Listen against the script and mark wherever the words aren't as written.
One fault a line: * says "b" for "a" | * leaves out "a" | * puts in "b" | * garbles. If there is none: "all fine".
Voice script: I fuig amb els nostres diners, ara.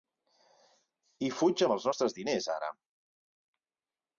all fine